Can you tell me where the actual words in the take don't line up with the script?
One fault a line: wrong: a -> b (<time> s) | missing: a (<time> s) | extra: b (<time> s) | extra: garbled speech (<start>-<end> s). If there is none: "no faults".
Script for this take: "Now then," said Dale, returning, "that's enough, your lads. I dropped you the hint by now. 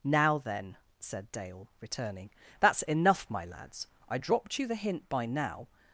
wrong: your -> my (3.3 s)